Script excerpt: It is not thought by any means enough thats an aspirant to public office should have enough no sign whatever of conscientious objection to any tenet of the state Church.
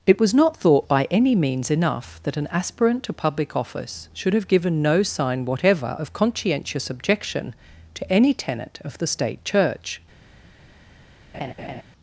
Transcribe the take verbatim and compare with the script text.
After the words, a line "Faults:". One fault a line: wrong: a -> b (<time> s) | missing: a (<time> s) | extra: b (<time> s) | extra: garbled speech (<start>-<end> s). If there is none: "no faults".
It was not thought by any means enough that an aspirant to public office should have given no sign whatever of conscientious objection to any tenet of the state Church.
Faults:
wrong: is -> was (0.2 s)
wrong: thats -> that (2.2 s)
wrong: enough -> given (4.5 s)